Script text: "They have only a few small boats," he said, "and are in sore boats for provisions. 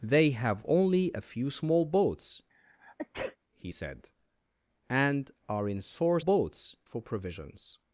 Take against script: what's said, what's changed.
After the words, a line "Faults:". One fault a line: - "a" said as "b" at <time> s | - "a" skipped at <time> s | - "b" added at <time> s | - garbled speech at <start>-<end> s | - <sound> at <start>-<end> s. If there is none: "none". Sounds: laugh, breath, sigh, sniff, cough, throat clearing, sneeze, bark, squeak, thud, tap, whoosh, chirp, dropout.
"They have only a few small boats," he said, "and are in sore boats for provisions.
Faults:
- sneeze at 2.5-3.4 s